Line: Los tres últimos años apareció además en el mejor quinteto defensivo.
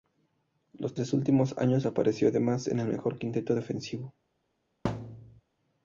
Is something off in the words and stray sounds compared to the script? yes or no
yes